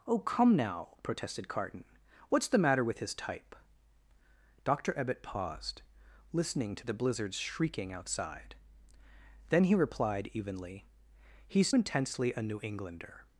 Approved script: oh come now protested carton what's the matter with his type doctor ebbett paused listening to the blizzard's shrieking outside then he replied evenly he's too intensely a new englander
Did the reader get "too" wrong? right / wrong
wrong